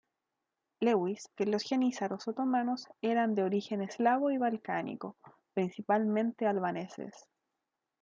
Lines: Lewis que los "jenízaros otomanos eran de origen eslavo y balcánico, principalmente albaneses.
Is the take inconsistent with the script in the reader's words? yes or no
no